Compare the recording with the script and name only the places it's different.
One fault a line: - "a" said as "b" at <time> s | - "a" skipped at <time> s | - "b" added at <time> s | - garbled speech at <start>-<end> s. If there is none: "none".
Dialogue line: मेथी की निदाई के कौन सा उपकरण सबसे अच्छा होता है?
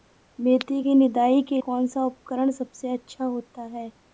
none